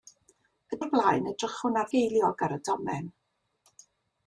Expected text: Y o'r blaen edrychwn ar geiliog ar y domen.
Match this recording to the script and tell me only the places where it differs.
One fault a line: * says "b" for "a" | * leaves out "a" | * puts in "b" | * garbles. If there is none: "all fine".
all fine